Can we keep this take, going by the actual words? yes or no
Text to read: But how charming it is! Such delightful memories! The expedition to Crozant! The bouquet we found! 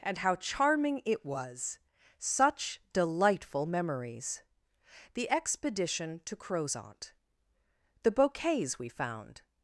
no